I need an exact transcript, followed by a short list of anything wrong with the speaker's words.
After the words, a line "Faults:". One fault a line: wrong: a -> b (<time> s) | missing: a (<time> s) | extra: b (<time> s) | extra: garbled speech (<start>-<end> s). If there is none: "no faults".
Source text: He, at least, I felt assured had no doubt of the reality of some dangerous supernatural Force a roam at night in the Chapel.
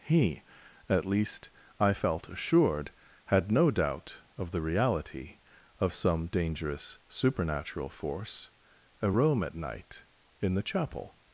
He, at least, I felt assured had no doubt of the reality of some dangerous supernatural Force a roam at night in the Chapel.
Faults:
no faults